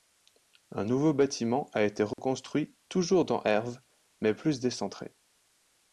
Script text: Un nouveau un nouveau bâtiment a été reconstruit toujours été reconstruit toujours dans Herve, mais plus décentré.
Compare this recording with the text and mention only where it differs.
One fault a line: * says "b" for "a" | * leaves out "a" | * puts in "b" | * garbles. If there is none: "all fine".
* leaves out "un nouveau"
* leaves out "été reconstruit toujours"